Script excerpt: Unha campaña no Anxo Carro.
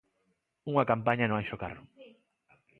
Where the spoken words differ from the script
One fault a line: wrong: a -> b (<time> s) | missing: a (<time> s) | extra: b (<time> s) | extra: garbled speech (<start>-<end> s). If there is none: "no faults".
no faults